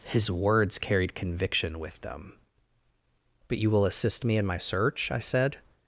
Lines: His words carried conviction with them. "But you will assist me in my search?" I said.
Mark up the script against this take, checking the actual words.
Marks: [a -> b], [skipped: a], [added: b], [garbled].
His words carried conviction with them. "But you will assist me in my search?" I said.